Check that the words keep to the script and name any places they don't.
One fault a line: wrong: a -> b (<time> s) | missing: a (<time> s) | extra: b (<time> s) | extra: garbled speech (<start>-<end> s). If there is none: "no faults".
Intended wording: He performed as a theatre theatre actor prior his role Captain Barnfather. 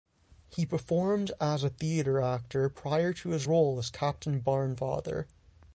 missing: theatre (2.2 s)
extra: to (3.1 s)
extra: as (3.8 s)